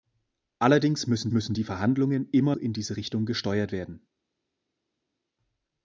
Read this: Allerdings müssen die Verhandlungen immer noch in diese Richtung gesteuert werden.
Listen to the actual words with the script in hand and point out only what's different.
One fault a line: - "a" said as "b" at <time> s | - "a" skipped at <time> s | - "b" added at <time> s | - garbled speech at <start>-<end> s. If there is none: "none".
- "müssen" added at 1.3 s
- "noch" skipped at 2.6 s